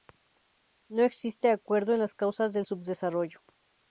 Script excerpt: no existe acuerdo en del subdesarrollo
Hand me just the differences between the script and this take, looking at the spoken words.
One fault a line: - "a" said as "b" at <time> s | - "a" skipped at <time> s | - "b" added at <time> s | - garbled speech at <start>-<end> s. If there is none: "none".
- "las causas" added at 2.0 s